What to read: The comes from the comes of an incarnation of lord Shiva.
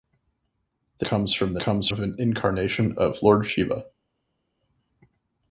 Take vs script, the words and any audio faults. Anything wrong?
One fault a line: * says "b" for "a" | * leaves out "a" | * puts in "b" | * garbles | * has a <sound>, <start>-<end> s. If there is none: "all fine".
all fine